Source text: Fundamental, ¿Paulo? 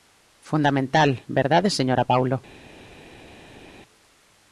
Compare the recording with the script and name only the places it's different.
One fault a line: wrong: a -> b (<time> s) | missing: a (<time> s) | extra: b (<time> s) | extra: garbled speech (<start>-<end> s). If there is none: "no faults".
extra: verdade señora (1.3 s)